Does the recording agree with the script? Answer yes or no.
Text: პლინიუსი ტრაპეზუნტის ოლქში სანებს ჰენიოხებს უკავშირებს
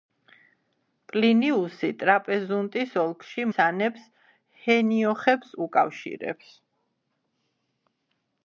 yes